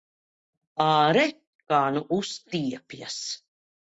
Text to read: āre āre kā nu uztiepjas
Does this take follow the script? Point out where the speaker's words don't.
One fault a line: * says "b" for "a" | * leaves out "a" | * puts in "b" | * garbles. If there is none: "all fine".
* leaves out "āre"